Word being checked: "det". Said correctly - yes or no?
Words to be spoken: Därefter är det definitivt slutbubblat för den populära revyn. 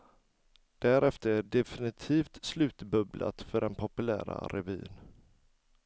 no